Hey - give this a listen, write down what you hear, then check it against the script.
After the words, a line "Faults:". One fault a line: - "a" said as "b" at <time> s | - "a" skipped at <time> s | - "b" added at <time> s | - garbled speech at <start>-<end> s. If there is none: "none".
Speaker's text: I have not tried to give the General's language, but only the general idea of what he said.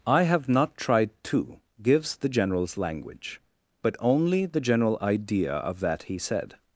I have not tried to gives the General's language, but only the general idea of that he said.
Faults:
- "give" said as "gives" at 1.8 s
- "what" said as "that" at 5.8 s